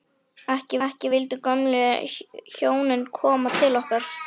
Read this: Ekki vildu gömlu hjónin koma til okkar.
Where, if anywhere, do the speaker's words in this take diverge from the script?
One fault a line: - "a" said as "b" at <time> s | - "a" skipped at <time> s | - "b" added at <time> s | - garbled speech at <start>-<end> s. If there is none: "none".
- "ekki" added at 0.8 s